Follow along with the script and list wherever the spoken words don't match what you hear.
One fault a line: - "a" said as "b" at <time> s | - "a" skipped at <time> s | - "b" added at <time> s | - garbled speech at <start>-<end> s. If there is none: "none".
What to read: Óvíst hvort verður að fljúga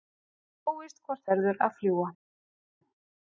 none